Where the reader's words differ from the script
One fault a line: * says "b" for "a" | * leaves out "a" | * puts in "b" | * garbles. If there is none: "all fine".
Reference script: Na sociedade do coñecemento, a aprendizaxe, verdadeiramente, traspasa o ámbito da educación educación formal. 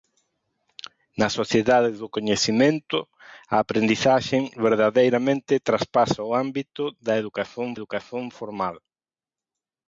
all fine